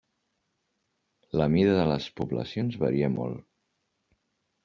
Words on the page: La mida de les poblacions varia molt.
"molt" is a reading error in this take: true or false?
false